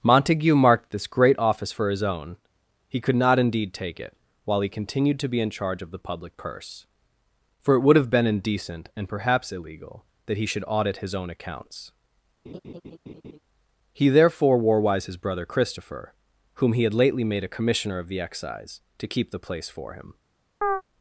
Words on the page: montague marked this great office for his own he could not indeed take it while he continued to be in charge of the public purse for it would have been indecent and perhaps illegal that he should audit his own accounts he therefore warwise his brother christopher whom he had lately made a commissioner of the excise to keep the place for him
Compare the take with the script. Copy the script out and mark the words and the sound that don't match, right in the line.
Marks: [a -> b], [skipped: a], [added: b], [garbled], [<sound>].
montague marked this great office for his own he could not indeed take it while he continued to be in charge of the public purse for it would have been indecent and perhaps illegal that he should audit his own accounts [laugh] he therefore warwise his brother christopher whom he had lately made a commissioner of the excise to keep the place for him [chirp]